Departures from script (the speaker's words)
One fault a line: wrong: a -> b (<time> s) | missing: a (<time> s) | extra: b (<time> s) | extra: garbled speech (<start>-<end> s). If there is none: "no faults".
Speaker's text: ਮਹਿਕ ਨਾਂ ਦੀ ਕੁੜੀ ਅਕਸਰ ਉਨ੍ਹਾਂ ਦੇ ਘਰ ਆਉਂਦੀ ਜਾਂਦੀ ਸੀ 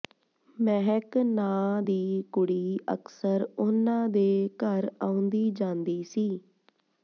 no faults